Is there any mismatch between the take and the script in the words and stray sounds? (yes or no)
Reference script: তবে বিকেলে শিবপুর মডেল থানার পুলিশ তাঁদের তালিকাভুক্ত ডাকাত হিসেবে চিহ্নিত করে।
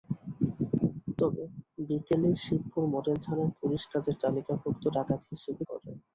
yes